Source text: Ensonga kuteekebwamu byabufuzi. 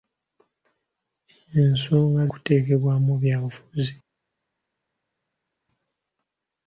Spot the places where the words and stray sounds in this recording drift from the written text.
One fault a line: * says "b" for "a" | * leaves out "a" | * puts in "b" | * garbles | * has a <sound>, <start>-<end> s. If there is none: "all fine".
all fine